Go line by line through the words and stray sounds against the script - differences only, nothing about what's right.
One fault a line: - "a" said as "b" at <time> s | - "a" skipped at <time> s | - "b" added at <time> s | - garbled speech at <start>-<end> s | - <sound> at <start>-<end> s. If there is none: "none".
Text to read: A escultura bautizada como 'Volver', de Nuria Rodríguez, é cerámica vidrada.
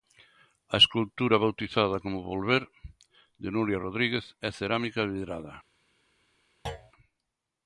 - thud at 6.7-6.9 s